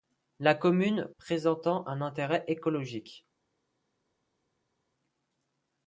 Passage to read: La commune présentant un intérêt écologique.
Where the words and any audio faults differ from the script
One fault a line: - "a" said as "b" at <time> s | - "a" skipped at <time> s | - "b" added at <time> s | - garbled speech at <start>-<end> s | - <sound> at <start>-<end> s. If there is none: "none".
none